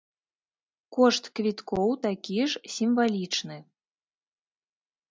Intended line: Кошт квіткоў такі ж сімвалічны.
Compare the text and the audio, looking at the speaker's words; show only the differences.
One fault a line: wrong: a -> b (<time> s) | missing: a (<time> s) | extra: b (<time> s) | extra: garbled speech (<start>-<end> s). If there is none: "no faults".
no faults